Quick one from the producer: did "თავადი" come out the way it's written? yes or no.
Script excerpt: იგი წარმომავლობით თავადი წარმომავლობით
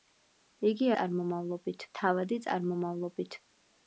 yes